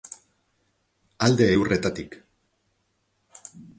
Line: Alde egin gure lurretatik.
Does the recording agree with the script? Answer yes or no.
no